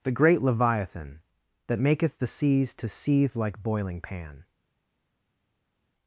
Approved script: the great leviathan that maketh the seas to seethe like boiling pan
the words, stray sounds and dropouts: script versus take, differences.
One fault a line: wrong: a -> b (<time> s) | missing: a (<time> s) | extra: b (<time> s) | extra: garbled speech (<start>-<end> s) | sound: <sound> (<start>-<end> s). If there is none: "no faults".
no faults